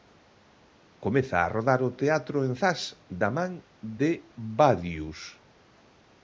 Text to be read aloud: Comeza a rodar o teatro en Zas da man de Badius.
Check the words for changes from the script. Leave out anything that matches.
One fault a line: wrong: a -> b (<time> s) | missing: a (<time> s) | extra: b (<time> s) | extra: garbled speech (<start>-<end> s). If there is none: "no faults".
no faults